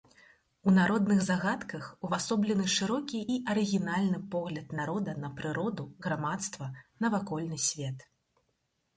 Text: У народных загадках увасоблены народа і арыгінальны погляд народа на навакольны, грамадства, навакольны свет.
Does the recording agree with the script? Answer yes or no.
no